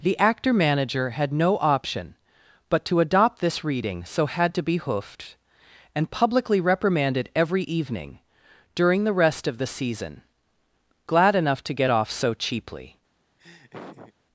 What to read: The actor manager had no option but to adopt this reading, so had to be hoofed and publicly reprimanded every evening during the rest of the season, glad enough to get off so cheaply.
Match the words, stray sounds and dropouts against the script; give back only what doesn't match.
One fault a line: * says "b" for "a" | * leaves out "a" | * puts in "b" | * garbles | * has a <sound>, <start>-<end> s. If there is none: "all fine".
* has a laugh, 13.4-14.1 s